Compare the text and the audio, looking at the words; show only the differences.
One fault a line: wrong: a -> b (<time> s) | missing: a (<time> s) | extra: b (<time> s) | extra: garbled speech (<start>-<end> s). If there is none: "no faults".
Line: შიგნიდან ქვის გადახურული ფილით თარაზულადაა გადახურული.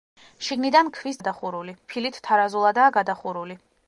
no faults